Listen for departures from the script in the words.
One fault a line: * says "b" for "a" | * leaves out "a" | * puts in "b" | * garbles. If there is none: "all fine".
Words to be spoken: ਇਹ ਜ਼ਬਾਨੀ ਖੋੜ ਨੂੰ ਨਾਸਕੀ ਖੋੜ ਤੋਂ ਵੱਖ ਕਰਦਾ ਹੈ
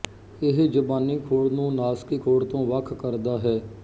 all fine